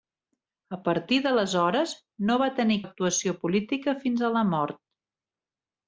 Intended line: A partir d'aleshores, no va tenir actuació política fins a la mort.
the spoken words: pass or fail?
pass